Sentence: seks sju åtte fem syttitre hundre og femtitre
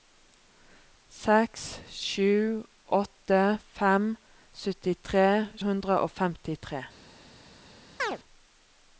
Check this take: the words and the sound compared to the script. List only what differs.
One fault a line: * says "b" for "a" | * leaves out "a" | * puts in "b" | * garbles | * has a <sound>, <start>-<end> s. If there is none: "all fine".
* has a chirp, 8.0-8.2 s